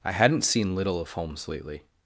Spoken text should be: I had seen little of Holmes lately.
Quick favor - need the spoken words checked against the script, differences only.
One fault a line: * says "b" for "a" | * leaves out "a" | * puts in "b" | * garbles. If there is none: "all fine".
* says "hadn't" for "had"